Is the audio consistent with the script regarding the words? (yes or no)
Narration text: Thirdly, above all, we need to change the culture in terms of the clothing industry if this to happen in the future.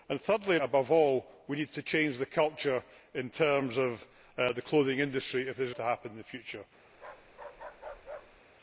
yes